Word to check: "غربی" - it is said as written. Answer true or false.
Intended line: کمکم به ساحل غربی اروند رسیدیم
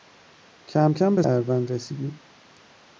false